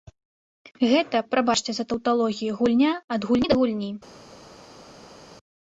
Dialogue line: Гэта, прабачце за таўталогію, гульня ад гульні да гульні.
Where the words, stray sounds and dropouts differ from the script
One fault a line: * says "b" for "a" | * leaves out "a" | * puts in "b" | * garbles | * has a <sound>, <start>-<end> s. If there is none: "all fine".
all fine